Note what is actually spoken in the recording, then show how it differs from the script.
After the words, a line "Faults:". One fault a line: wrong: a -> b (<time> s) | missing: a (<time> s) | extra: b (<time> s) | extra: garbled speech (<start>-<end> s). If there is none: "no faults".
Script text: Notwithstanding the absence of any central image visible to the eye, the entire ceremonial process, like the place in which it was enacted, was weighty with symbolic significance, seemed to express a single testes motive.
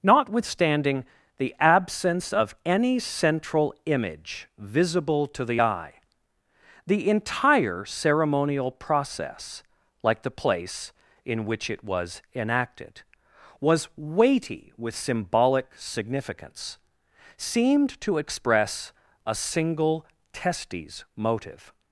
Notwithstanding the absence of any central image visible to the eye, the entire ceremonial process, like the place in which it was enacted, was weighty with symbolic significance, seemed to express a single testes motive.
Faults:
no faults